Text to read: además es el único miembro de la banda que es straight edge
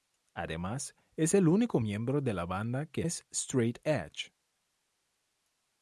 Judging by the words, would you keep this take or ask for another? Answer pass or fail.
pass